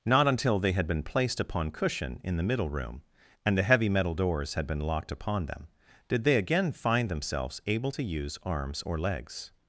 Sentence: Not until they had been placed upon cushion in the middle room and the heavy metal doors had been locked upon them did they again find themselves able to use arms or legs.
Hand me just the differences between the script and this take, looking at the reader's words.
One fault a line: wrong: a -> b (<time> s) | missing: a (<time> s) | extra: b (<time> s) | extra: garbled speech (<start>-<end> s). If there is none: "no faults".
no faults